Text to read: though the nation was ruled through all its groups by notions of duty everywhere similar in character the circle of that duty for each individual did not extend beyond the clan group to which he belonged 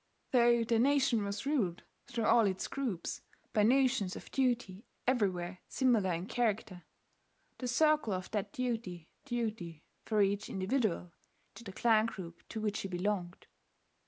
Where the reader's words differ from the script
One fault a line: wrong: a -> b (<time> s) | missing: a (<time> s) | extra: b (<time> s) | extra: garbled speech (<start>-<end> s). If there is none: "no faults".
extra: duty (9.3 s)
missing: not extend beyond (11.7 s)